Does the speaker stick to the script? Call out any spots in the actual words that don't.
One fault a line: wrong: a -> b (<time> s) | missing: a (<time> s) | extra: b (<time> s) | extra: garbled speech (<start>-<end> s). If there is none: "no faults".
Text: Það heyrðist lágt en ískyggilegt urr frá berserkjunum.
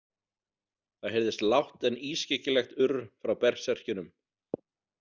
no faults